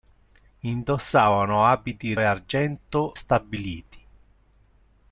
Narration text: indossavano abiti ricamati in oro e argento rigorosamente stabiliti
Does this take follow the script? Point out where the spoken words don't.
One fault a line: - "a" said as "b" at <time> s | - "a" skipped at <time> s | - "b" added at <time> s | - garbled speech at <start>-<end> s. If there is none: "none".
- "ricamati in oro" skipped at 2.1 s
- "rigorosamente" skipped at 3.2 s